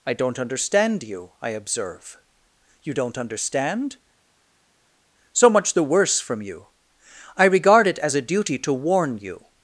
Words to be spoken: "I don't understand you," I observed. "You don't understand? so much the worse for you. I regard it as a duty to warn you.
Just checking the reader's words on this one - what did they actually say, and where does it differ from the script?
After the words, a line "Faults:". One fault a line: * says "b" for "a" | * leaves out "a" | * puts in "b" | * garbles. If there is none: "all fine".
"I don't understand you," I observe. "You don't understand? so much the worse from you. I regard it as a duty to warn you.
Faults:
* says "observe" for "observed"
* says "from" for "for"